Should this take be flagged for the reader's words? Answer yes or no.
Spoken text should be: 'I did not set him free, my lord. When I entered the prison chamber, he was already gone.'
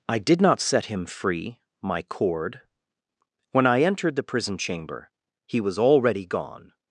yes